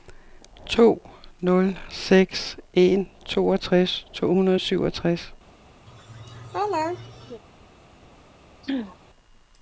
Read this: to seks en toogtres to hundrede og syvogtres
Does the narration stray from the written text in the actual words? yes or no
yes